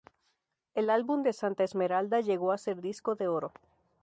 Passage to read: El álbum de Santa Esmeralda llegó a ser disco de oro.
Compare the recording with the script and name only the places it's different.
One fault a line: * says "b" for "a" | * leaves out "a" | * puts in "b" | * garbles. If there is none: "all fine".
all fine